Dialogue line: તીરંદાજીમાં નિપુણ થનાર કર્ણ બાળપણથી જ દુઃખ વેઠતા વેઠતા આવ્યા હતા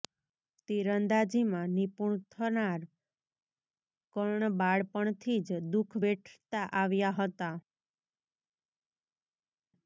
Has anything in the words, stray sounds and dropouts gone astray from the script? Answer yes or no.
yes